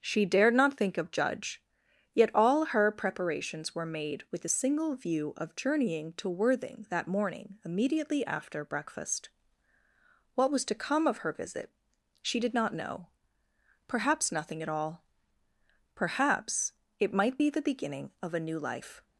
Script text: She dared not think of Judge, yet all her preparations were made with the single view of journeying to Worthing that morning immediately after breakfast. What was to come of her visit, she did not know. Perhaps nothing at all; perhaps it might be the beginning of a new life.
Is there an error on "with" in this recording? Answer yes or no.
no